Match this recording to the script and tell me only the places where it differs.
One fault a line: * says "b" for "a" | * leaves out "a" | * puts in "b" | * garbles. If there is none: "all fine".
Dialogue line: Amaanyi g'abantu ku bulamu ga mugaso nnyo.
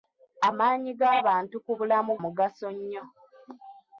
* leaves out "ga"